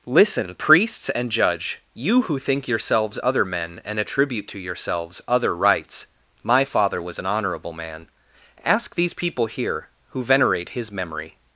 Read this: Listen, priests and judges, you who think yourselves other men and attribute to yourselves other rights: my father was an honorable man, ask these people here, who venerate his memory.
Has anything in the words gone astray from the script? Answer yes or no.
yes